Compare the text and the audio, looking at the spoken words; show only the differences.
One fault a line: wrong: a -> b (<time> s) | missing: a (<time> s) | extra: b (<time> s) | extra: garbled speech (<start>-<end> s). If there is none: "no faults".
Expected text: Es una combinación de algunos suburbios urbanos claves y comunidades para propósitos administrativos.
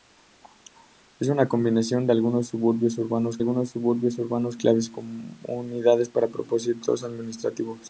extra: algunos suburbios urbanos (3.4 s)